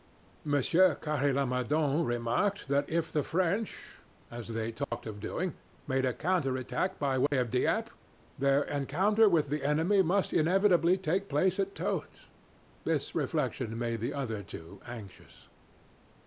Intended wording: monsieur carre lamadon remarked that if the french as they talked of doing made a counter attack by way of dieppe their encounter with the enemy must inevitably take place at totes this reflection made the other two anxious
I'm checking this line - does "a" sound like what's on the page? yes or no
yes